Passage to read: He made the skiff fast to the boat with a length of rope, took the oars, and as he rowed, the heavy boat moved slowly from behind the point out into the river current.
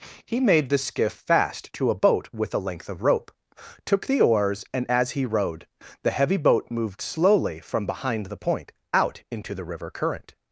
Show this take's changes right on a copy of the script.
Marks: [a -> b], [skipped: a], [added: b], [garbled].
He made the skiff fast to [the -> a] boat with a length of rope, took the oars, and as he rowed, the heavy boat moved slowly from behind the point out into the river current.